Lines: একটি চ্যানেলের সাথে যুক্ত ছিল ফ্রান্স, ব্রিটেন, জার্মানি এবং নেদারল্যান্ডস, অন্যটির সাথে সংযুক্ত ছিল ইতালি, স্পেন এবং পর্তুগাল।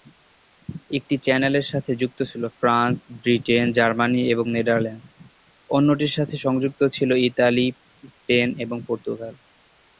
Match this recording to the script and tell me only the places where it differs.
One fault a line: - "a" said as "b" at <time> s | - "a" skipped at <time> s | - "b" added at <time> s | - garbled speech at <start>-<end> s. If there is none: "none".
none